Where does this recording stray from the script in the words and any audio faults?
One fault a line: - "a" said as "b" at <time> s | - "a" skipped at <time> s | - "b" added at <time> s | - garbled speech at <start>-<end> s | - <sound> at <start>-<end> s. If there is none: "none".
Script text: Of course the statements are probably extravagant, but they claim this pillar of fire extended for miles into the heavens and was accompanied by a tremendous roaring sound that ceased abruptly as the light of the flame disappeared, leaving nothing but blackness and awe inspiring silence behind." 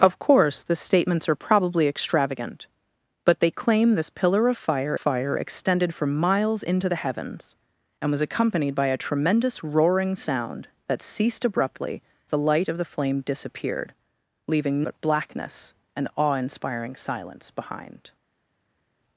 - "fire" added at 4.9 s
- "as" skipped at 12.0 s
- "nothing" skipped at 14.9 s